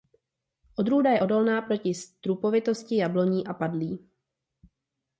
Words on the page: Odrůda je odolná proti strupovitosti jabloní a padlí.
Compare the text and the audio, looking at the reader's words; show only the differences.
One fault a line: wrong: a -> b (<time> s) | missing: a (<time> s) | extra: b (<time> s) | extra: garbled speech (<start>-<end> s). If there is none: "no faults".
no faults